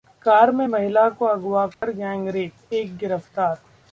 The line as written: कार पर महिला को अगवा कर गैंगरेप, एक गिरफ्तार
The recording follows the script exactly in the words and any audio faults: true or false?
false